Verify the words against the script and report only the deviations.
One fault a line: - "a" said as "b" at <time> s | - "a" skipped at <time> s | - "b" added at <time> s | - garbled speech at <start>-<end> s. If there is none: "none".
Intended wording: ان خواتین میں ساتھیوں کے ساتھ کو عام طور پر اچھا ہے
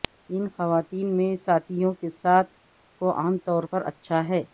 none